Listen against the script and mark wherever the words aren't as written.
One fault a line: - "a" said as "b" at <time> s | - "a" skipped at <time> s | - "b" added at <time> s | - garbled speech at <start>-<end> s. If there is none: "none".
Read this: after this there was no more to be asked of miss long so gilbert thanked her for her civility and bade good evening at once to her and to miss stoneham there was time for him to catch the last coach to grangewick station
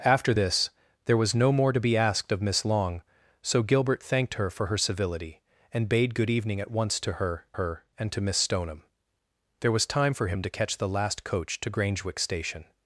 - "her" added at 7.5 s